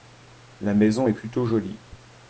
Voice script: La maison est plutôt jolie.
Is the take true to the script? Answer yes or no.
yes